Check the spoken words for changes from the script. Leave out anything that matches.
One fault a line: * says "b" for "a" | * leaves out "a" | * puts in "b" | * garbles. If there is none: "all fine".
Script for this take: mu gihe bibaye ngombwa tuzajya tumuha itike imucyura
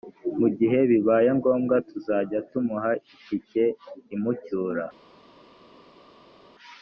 all fine